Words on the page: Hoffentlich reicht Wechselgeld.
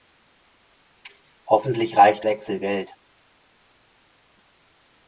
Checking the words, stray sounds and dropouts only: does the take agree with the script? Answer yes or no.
yes